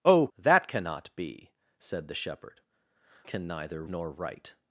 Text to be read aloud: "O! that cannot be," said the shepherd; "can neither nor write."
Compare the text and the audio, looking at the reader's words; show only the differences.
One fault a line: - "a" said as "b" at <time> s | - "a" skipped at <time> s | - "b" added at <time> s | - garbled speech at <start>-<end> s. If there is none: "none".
none